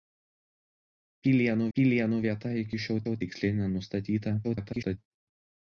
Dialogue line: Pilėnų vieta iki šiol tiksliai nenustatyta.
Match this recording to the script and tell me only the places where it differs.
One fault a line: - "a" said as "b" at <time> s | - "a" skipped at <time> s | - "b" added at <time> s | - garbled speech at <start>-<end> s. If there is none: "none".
- "pilėnų" added at 1.8 s
- "šiol" added at 3.0 s
- garbled speech at 4.4-5.0 s